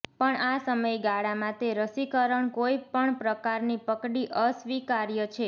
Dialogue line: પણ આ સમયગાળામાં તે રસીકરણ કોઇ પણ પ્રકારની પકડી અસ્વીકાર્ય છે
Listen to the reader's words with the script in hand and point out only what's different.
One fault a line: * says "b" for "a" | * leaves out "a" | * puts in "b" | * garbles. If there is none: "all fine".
all fine